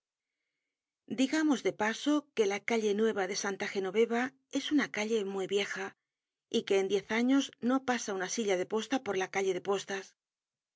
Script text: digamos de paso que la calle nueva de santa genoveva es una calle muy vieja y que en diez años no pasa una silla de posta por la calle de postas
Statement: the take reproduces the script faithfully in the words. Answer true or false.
true